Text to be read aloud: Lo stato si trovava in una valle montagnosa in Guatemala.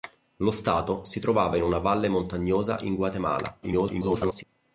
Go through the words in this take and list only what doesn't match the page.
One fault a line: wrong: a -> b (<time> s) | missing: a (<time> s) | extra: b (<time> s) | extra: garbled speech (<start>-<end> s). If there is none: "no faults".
extra: garbled speech (3.6-4.4 s)